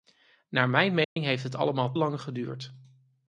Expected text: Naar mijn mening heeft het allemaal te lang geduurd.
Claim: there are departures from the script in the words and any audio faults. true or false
true